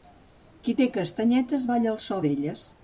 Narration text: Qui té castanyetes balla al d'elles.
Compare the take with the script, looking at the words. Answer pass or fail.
fail